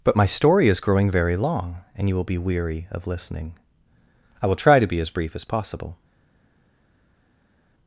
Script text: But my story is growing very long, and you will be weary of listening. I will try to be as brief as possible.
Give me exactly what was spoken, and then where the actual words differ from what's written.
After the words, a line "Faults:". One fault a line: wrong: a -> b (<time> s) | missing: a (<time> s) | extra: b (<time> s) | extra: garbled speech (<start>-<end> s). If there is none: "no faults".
But my story is growing very long, and you will be weary of listening. I will try to be as brief as possible.
Faults:
no faults